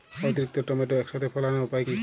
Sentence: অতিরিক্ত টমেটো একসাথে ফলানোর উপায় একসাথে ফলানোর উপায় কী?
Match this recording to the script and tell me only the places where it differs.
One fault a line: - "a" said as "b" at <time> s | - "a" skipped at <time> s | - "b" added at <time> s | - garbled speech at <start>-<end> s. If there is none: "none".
- "একসাথে ফলানোর উপায়" skipped at 1.9 s